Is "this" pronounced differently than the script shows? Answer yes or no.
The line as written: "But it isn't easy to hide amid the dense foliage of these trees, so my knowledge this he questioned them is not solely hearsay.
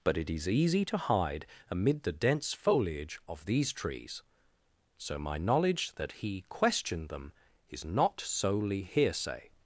yes